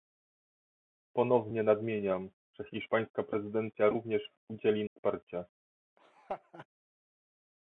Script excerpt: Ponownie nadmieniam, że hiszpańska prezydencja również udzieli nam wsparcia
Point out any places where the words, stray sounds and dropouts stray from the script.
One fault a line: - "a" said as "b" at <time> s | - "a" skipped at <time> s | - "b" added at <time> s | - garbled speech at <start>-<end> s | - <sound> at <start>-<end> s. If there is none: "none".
- "nam" skipped at 4.8 s
- laugh at 6.0-6.7 s